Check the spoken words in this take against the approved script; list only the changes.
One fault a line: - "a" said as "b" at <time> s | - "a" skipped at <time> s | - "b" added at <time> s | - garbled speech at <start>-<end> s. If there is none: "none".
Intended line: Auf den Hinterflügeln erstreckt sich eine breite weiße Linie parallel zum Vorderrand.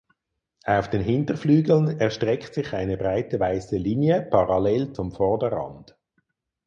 none